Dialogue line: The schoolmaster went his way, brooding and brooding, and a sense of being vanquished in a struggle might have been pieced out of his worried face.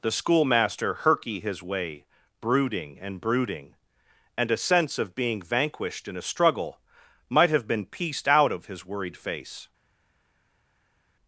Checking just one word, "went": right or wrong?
wrong